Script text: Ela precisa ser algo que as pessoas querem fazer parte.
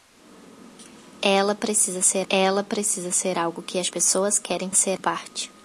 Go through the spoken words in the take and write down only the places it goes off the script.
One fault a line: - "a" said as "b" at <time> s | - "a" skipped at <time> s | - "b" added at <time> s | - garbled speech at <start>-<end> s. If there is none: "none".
- "ela precisa ser" added at 2.3 s
- "fazer" said as "ser" at 4.7 s